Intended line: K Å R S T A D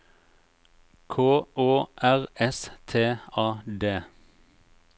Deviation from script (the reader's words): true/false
false